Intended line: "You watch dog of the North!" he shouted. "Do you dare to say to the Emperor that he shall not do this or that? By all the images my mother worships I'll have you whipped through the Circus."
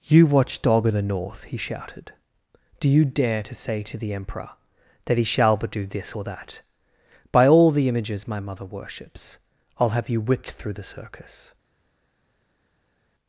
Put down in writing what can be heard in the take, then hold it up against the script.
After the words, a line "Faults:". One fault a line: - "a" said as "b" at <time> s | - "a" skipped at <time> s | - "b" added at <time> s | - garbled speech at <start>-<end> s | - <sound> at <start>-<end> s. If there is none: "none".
"You watch dog of the North!" he shouted. "Do you dare to say to the Emperor that he shall but do this or that? By all the images my mother worships I'll have you whipped through the Circus."
Faults:
- "not" said as "but" at 5.6 s